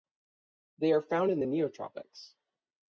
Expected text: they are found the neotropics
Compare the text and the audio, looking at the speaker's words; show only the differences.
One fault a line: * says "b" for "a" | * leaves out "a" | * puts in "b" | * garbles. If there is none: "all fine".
* puts in "in"